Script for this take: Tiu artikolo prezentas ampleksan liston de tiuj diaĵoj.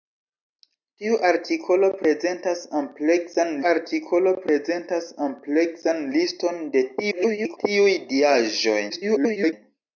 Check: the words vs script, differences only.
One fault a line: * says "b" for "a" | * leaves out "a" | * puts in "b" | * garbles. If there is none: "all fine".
* puts in "artikolo prezentas ampleksan"
* garbles
* garbles